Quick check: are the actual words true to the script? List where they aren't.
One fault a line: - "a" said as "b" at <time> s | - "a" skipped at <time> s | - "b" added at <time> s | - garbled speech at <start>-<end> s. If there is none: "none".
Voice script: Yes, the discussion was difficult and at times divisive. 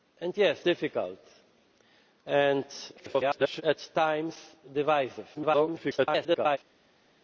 - "the discussion was" skipped at 0.6 s
- garbled speech at 3.0-3.6 s
- garbled speech at 5.3-6.6 s